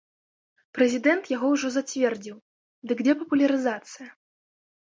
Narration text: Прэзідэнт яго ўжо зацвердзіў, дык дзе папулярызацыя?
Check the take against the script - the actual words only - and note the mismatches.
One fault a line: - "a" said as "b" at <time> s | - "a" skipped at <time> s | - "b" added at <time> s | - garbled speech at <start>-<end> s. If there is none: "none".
none